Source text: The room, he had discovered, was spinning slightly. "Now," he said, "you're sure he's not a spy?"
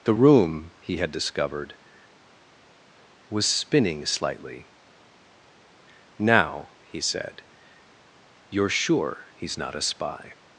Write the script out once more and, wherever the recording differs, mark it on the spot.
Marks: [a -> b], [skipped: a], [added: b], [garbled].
The room, he had discovered, was spinning slightly. "Now," he said, "you're sure he's not a spy?"